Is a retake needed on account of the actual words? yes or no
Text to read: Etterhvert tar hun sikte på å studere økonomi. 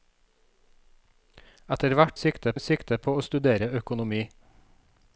yes